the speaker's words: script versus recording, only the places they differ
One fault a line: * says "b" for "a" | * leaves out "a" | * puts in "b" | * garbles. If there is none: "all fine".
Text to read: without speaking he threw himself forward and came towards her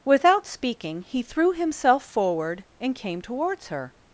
all fine